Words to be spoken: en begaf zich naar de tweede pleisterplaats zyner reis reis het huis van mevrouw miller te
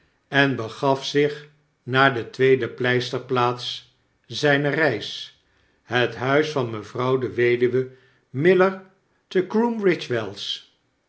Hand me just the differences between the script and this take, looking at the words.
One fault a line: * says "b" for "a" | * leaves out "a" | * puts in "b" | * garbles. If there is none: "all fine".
* leaves out "reis"
* puts in "de weduwe"